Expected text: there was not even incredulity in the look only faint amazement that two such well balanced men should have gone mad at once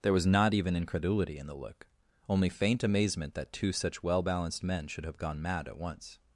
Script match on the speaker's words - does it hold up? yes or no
yes